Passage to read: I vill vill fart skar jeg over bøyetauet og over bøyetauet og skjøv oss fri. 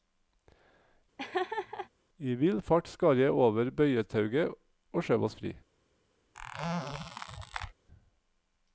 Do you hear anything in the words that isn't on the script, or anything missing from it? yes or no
yes